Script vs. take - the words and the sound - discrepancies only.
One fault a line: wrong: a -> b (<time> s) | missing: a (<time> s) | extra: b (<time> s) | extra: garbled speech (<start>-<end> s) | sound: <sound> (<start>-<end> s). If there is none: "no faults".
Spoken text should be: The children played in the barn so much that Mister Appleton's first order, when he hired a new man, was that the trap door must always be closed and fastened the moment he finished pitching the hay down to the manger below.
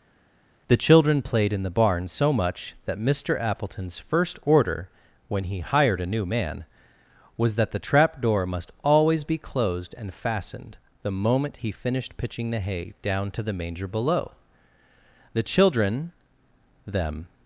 extra: The children them (15.3 s)